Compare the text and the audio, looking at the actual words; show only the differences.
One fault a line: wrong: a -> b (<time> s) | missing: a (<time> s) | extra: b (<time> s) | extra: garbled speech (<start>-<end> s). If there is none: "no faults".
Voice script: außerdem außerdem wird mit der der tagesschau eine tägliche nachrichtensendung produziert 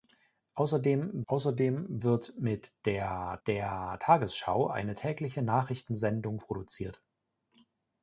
no faults